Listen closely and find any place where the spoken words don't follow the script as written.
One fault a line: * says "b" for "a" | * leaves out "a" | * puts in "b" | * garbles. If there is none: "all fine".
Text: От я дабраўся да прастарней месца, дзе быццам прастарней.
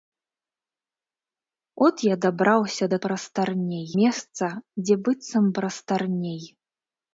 all fine